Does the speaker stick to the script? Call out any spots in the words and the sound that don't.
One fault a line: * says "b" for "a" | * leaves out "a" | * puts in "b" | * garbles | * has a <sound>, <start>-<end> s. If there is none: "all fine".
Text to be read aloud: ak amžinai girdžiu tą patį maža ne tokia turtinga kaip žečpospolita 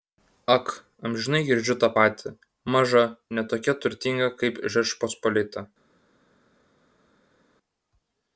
all fine